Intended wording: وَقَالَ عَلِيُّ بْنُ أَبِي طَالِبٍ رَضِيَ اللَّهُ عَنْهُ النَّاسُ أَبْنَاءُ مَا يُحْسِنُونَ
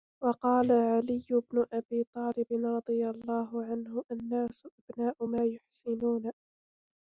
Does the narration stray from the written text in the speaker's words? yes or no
no